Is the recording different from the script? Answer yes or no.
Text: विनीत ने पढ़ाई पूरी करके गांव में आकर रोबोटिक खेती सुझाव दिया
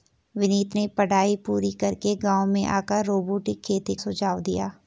no